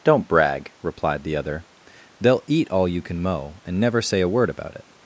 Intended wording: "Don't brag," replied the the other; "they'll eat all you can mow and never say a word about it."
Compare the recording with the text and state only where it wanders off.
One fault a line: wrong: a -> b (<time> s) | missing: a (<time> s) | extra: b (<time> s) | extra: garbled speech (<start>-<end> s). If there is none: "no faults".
missing: the (1.4 s)